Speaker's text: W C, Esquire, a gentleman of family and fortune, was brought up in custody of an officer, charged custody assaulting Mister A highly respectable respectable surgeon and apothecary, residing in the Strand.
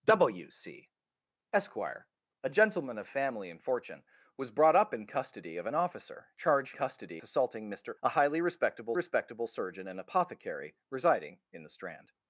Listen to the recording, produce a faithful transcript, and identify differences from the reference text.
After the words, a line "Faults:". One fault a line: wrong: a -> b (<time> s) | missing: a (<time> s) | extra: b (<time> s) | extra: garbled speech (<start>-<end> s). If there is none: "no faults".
W C, Esquire, a gentleman of family and fortune, was brought up in custody of an officer, charged custody assaulting Mister A highly respectable respectable surgeon and apothecary, residing in the Strand.
Faults:
no faults